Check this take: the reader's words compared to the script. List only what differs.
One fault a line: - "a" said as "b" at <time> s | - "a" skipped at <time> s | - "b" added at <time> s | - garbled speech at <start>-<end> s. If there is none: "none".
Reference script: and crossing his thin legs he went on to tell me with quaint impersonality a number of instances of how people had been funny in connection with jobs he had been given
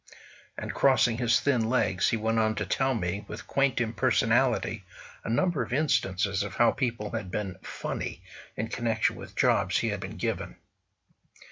none